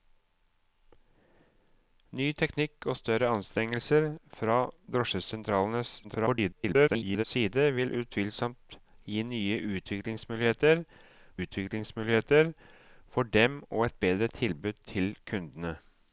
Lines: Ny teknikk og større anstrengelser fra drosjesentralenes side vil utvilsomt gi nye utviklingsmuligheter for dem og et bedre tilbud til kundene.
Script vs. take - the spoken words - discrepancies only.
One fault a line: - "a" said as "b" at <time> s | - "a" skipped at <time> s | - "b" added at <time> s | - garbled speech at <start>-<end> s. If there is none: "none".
- garbled speech at 6.0-7.2 s
- "utviklingsmuligheter" added at 11.4 s